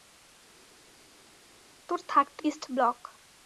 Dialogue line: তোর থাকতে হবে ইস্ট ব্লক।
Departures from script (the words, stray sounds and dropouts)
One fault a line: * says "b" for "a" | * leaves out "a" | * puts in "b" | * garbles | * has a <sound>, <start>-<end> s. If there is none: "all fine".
* leaves out "হবে"